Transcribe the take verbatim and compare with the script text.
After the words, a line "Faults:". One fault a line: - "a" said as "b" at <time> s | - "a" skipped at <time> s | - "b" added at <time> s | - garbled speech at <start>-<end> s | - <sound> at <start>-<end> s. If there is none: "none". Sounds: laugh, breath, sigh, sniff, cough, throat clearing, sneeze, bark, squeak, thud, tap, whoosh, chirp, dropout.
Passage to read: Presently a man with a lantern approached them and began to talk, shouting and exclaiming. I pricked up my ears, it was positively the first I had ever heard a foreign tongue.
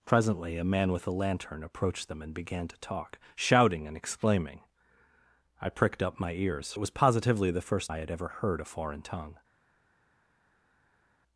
Presently a man with a lantern approached them and began to talk, shouting and exclaiming. I pricked up my ears, it was positively the first I had ever heard a foreign tongue.
Faults:
none